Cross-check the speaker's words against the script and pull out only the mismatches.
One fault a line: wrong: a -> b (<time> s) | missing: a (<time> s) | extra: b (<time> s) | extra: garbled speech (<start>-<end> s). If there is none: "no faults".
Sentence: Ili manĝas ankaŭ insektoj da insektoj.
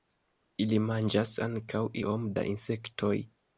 wrong: insektoj -> iom (2.0 s)